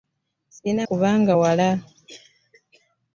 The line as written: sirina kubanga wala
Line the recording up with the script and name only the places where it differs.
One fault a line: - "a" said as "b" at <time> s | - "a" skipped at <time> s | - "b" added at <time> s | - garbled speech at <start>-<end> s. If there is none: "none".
none